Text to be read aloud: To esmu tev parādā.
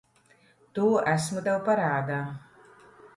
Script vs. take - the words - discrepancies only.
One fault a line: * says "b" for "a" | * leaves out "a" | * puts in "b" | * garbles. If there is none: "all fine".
all fine